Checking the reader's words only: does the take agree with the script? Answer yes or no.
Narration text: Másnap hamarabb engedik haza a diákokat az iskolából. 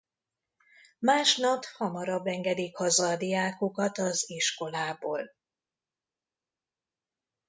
yes